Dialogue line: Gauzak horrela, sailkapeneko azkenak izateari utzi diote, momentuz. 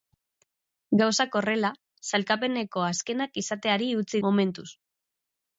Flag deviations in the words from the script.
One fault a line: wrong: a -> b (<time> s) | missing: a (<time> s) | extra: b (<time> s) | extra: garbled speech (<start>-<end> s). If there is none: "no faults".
missing: diote (4.2 s)